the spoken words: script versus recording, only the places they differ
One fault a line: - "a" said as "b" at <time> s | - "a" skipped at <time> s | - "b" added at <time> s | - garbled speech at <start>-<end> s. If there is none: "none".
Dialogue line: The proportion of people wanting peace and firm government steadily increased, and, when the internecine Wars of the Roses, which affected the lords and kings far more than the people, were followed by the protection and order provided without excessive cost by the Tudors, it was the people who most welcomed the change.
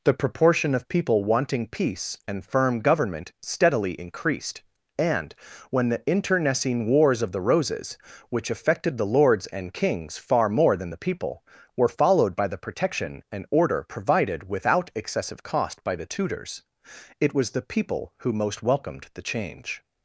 none